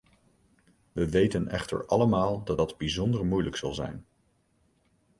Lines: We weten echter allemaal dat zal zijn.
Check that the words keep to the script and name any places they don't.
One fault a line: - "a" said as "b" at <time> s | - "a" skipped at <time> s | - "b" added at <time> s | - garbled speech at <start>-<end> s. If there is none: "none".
- "dat bijzonder moeilijk" added at 2.6 s